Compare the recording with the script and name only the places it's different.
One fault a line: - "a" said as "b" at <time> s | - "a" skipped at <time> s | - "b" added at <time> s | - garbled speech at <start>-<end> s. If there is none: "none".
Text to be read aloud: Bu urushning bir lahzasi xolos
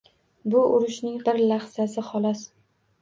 none